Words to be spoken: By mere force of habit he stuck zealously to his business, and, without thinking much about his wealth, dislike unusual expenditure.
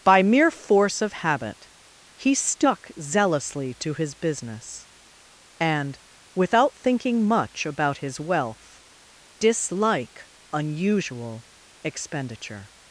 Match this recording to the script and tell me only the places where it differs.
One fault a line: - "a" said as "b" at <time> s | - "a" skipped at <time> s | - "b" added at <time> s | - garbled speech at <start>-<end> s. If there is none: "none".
none